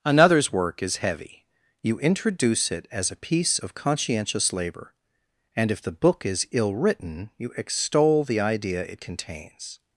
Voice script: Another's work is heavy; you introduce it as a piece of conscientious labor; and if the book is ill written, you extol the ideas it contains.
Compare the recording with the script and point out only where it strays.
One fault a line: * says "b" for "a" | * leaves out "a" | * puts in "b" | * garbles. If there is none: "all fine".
* says "idea" for "ideas"